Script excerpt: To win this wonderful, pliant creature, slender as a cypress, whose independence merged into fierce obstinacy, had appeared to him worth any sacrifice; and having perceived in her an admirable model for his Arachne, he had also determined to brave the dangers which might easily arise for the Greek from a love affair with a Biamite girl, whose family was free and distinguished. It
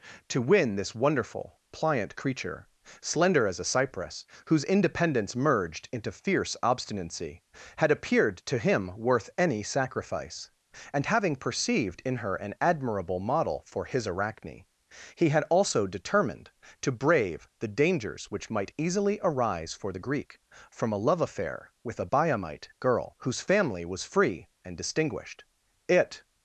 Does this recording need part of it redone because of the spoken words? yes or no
no